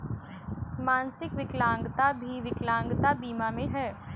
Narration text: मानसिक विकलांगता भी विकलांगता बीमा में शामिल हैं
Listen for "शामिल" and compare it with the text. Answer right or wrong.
wrong